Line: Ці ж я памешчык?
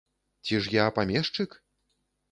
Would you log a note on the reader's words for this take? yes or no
no